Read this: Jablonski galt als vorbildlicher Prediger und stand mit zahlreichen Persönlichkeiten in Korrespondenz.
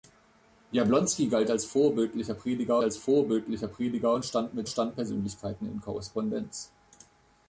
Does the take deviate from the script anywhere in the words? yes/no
yes